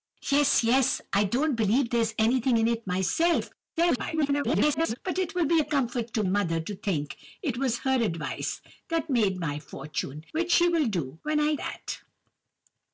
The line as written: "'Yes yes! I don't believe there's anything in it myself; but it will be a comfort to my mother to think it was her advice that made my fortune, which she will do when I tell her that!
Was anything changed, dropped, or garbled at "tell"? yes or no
yes